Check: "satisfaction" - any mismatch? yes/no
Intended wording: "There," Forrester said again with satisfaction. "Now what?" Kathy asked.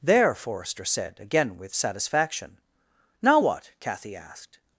no